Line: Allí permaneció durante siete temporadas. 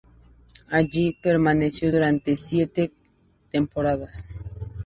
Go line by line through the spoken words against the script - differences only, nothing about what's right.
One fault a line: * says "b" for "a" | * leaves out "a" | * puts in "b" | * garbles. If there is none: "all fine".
all fine